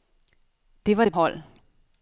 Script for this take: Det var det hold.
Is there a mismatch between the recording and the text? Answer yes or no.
no